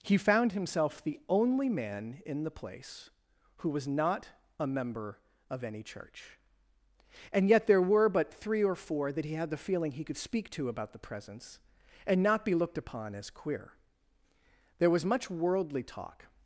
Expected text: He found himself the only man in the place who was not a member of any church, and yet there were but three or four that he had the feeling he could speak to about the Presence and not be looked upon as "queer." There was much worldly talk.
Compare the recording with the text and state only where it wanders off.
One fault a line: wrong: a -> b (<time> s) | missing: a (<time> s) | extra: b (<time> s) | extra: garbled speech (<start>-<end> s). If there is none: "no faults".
no faults